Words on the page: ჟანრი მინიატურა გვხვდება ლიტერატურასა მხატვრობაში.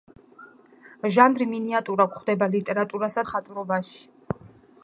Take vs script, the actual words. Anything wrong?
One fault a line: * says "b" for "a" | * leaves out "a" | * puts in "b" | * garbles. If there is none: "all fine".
all fine